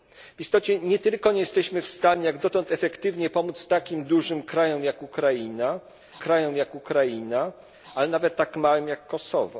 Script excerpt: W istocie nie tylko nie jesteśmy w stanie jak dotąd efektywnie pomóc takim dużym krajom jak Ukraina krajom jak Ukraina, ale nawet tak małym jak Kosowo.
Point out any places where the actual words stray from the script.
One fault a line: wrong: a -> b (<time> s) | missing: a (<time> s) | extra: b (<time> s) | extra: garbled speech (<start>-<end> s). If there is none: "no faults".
no faults